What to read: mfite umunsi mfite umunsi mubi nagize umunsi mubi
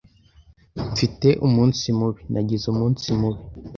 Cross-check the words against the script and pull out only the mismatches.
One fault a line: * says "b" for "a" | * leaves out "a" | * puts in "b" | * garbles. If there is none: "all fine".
* leaves out "mfite umunsi"